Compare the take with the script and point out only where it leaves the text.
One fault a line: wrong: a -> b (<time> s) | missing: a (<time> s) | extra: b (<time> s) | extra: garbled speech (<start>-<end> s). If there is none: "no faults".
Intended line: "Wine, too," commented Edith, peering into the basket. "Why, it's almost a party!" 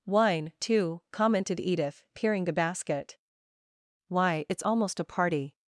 missing: into (2.4 s)